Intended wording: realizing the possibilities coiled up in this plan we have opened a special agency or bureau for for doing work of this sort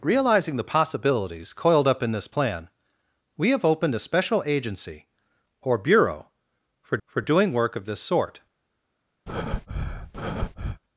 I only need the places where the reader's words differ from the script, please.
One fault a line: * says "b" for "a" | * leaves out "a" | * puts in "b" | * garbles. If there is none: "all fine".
all fine